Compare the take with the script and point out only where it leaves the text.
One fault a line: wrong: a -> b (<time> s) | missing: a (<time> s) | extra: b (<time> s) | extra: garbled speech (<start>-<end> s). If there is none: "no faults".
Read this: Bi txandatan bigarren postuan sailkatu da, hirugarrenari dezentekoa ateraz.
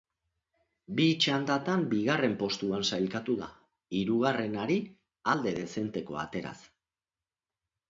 extra: alde (5.3 s)